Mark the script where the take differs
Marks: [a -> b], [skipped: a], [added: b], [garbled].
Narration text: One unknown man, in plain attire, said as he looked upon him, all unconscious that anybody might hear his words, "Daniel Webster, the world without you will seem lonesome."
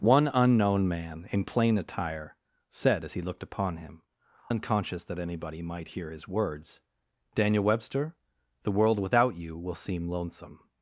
One unknown man, in plain attire, said as he looked upon him, [skipped: all] unconscious that anybody might hear his words, "Daniel Webster, the world without you will seem lonesome."